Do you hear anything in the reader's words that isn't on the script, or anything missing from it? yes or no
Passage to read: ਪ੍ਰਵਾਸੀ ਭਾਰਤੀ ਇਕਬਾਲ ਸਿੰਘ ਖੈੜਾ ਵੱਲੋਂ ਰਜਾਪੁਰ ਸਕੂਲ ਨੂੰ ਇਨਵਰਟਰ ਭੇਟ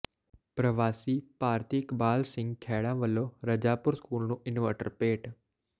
no